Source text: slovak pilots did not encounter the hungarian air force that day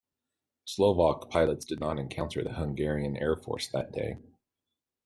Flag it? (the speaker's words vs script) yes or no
no